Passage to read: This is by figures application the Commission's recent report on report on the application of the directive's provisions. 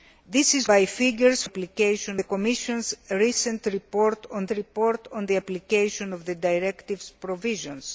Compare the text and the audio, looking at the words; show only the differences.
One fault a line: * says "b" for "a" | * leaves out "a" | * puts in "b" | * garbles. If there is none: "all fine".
all fine